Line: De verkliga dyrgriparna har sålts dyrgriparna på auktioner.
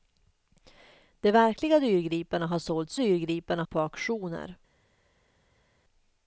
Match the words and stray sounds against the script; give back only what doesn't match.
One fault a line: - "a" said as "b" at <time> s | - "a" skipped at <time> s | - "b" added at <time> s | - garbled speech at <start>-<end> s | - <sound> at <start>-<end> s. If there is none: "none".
none